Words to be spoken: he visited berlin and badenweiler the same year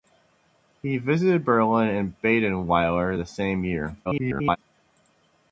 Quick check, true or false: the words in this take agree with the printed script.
false